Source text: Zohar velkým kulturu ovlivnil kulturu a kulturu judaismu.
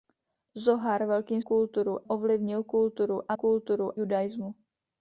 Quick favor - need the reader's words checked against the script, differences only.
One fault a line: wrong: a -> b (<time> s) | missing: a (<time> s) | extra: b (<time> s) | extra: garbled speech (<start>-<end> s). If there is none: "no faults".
no faults